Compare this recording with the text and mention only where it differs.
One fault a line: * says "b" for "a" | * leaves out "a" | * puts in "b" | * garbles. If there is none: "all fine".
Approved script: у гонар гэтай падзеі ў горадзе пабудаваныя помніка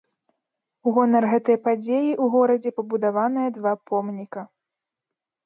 * puts in "два"